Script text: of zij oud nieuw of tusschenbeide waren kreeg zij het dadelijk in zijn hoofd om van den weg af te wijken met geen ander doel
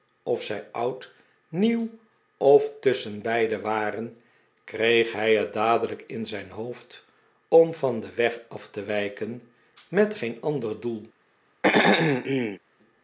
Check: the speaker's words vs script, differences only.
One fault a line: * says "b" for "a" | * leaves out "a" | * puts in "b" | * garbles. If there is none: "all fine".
* says "hij" for "zij"